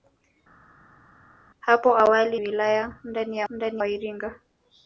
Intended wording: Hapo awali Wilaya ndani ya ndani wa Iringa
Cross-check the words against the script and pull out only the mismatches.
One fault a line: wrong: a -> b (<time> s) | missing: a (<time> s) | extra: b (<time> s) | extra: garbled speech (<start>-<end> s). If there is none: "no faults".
no faults